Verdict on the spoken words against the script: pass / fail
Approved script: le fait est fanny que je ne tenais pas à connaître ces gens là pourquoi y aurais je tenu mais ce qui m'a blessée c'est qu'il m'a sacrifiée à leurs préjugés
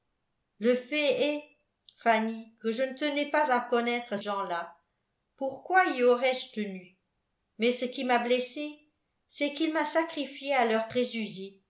fail